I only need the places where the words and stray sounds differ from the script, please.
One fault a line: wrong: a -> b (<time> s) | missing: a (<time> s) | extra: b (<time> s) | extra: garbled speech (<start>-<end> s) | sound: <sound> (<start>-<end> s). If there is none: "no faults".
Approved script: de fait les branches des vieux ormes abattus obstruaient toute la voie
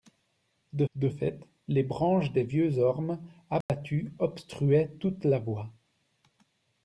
extra: de (1.0 s)
sound: dropout (3.6-3.7 s)